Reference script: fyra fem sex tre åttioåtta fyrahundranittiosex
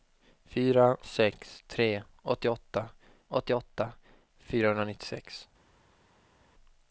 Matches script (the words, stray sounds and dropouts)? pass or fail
fail